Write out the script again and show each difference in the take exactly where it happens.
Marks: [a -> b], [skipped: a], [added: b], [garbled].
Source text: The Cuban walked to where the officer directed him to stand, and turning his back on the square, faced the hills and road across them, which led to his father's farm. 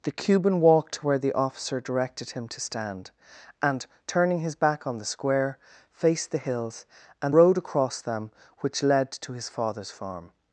The Cuban walked to where the officer directed him to stand, and turning his back on the square, faced the hills and road across them, which led to his father's farm.